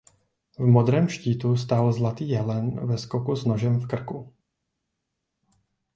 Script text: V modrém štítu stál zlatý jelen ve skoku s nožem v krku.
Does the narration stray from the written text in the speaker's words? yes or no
no